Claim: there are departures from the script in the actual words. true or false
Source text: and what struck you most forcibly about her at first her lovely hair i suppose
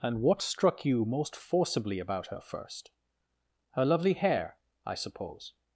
true